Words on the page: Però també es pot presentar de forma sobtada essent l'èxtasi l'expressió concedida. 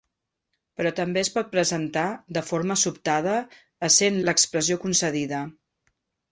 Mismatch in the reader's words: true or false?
true